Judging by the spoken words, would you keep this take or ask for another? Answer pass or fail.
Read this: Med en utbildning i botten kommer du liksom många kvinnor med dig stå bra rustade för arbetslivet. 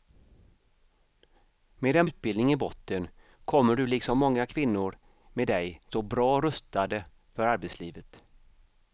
pass